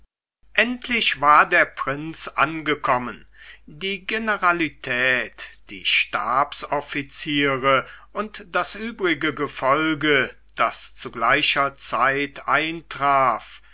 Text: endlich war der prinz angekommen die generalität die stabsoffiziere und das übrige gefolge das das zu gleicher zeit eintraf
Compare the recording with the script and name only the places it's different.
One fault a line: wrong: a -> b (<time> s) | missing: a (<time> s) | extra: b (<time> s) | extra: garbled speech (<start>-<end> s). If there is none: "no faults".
missing: das (10.9 s)